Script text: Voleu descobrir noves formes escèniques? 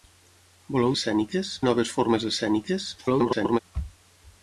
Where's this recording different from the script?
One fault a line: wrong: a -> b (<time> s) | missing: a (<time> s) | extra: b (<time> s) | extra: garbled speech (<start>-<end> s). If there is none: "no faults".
wrong: descobrir -> escèniques (1.0 s)
extra: garbled speech (3.0-3.6 s)